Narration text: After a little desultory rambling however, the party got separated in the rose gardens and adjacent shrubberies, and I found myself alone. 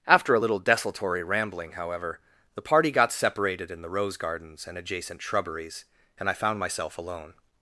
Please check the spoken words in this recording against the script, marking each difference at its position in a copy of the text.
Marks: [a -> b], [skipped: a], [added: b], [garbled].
After a little desultory rambling however, the party got separated in the rose gardens and adjacent shrubberies, and I found myself alone.